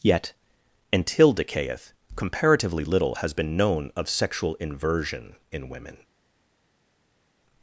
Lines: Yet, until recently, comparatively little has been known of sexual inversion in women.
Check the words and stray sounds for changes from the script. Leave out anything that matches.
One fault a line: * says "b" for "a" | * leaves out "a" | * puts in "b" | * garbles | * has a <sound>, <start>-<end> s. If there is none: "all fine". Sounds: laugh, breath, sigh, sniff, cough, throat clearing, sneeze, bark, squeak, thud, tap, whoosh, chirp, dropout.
* says "decayeth" for "recently"